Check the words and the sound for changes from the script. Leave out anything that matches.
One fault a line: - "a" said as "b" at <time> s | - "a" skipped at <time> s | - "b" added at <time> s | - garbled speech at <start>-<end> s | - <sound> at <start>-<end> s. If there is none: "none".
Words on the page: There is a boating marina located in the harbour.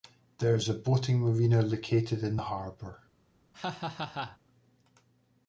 - laugh at 3.5-4.4 s